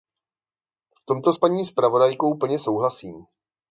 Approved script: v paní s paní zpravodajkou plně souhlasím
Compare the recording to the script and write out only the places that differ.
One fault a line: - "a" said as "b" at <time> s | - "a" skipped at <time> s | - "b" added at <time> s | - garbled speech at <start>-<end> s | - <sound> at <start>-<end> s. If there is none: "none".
- "paní" said as "tomto" at 1.1 s